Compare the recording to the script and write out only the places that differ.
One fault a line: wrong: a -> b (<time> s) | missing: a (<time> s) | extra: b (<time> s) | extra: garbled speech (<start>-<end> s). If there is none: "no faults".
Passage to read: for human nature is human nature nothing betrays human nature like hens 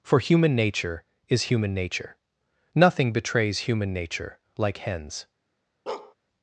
no faults